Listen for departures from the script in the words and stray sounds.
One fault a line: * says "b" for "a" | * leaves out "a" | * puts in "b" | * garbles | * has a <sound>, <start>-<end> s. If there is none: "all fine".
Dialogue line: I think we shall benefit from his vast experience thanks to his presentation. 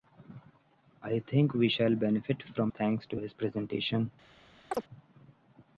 * leaves out "his vast experience"
* has a chirp, 4.7-4.8 s